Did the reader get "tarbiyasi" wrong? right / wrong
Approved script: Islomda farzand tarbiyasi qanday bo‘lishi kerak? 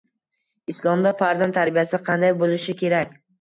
right